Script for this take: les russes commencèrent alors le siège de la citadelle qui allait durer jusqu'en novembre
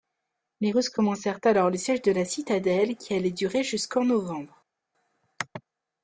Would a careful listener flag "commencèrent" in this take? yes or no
no